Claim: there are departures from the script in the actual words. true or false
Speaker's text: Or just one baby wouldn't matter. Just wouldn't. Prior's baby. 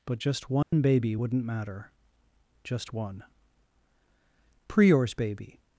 true